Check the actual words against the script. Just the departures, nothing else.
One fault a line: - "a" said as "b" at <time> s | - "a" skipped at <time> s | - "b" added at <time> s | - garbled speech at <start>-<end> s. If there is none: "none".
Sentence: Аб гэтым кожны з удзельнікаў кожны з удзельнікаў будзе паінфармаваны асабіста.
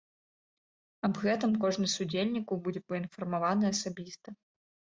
- "кожны з удзельнікаў" skipped at 2.6 s